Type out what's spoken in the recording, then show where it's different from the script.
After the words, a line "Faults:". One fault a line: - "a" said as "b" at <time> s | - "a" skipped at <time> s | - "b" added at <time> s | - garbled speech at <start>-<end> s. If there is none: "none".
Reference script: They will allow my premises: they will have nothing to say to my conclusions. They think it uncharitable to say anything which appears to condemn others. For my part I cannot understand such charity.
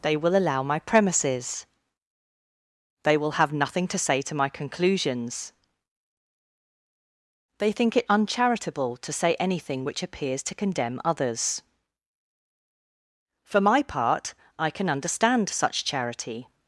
They will allow my premises: they will have nothing to say to my conclusions. They think it uncharitable to say anything which appears to condemn others. For my part I can understand such charity.
Faults:
- "cannot" said as "can" at 14.7 s